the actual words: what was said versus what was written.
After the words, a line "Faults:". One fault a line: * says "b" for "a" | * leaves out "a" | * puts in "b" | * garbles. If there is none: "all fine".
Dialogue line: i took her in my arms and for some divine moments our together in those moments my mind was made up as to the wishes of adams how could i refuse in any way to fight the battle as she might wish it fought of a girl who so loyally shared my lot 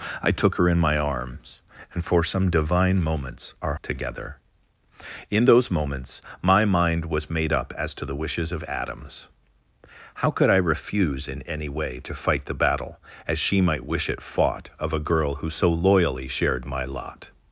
i took her in my arms and for some divine moments our together in those moments my mind was made up as to the wishes of adams how could i refuse in any way to fight the battle as she might wish it fought of a girl who so loyally shared my lot
Faults:
all fine